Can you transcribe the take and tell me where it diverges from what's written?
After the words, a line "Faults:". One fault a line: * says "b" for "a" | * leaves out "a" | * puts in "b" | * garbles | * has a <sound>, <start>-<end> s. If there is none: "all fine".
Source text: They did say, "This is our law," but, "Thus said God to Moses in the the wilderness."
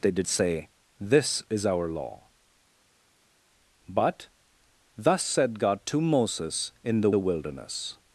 They did say, "This is our law," but, "Thus said God to Moses in the the wilderness."
Faults:
all fine